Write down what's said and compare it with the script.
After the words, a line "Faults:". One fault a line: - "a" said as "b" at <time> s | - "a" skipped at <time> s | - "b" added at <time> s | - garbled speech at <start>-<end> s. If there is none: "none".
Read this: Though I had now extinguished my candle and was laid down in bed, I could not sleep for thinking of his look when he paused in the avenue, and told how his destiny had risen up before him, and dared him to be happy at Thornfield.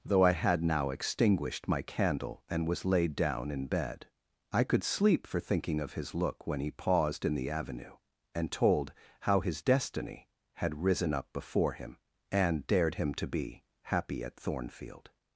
Though I had now extinguished my candle and was laid down in bed, I could sleep for thinking of his look when he paused in the avenue, and told how his destiny had risen up before him, and dared him to be happy at Thornfield.
Faults:
- "not" skipped at 4.8 s